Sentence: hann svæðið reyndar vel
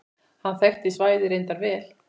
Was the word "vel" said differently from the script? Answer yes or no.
no